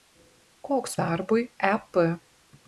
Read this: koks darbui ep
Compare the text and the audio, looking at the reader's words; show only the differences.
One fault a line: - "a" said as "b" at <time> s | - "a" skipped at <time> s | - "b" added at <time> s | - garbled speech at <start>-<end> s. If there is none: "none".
none